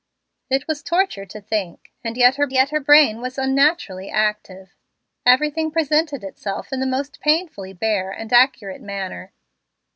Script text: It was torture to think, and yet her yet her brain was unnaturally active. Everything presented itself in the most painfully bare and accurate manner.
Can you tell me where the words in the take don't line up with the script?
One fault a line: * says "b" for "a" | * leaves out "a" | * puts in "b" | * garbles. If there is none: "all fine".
all fine